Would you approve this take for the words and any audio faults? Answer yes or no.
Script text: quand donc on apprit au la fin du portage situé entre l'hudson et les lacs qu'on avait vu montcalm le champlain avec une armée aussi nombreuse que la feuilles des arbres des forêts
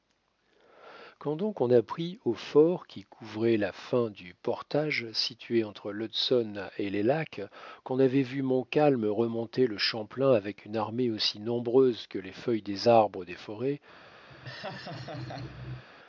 no